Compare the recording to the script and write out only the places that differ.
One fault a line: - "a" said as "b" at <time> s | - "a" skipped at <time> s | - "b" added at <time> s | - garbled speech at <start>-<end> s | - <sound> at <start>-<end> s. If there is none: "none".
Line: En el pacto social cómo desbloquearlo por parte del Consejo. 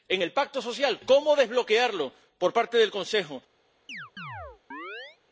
- chirp at 3.9-5.2 s